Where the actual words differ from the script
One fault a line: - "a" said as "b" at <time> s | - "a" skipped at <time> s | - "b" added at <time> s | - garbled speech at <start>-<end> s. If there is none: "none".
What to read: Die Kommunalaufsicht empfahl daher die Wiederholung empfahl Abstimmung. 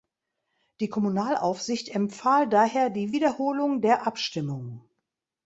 - "empfahl" said as "der" at 3.8 s